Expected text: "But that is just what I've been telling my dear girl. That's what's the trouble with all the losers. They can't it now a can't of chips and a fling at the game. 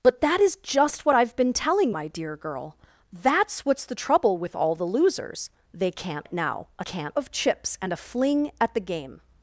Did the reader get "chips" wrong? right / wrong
right